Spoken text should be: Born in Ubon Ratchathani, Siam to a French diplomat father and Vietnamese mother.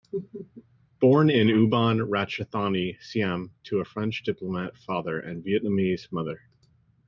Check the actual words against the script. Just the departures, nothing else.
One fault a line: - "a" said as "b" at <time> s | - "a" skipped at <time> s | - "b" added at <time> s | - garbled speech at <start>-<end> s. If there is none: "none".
none